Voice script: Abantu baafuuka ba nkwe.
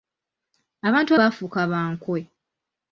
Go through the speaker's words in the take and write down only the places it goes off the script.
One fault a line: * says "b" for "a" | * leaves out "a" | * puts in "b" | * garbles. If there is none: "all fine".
all fine